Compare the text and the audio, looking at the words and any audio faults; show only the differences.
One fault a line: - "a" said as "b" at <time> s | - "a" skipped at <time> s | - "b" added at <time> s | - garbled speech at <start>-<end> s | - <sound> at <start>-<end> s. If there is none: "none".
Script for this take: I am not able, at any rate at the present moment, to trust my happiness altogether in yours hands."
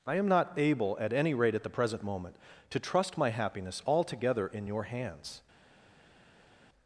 - "yours" said as "your" at 4.7 s